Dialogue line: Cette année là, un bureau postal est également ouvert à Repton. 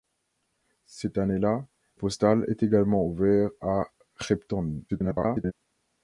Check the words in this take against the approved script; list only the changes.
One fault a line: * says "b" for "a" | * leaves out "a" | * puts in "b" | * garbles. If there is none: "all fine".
* leaves out "un bureau"
* garbles